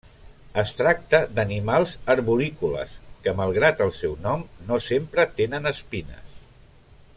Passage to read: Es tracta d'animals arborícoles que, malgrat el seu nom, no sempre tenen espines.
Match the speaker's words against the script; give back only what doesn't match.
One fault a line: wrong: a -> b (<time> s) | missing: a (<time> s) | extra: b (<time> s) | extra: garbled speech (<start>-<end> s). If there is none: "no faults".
no faults